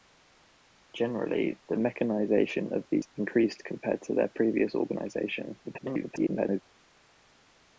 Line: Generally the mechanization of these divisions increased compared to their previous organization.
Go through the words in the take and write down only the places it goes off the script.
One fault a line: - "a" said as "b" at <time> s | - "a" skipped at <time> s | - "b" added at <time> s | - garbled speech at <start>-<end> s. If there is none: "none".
- "divisions" skipped at 3.0 s
- garbled speech at 5.6-6.6 s